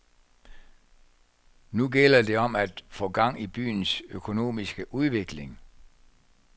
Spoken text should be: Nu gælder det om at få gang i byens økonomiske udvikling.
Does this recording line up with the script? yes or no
yes